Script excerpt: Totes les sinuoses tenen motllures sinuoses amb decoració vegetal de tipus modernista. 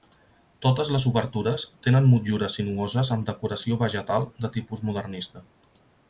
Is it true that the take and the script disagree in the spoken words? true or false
true